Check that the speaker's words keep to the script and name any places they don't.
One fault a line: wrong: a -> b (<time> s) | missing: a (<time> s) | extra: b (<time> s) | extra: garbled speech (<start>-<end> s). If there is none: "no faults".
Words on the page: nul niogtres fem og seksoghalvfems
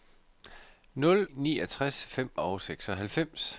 no faults